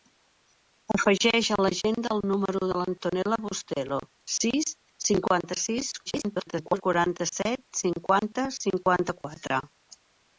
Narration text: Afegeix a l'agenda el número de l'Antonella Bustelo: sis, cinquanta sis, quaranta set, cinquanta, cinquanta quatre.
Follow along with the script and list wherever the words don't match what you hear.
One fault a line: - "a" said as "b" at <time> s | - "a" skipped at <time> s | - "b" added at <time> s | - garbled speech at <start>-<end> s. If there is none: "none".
- garbled speech at 6.1-6.8 s